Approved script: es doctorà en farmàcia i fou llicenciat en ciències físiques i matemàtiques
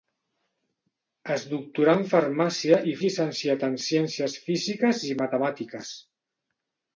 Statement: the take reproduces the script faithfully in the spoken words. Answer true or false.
false